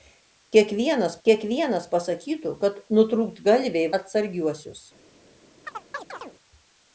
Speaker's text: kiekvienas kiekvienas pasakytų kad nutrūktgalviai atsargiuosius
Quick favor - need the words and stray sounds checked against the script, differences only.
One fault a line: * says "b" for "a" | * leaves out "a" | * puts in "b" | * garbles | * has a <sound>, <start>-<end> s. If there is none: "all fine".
* has a chirp, 5.6-6.3 s